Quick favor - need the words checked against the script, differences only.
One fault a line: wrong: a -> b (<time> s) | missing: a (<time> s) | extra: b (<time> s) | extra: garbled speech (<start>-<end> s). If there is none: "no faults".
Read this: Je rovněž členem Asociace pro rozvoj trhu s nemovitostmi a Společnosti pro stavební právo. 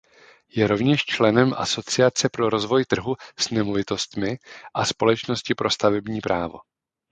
no faults